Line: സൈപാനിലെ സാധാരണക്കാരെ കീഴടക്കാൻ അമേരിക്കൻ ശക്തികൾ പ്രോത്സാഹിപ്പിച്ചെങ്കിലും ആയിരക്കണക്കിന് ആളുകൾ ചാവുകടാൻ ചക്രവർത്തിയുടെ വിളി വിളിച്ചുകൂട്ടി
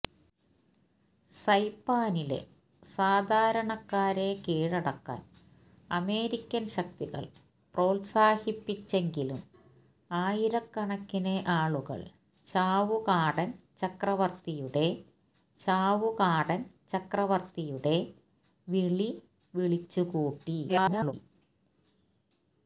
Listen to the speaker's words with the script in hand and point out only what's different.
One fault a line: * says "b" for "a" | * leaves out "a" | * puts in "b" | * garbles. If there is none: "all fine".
* puts in "ചാവുകടാൻ ചക്രവർത്തിയുടെ"
* garbles